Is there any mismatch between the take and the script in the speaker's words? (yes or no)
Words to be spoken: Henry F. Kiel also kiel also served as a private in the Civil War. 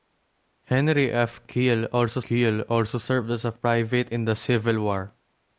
no